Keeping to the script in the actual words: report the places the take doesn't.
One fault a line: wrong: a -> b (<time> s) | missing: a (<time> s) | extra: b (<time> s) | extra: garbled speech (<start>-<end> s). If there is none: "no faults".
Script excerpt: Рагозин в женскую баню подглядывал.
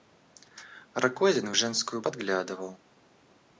missing: баню (2.0 s)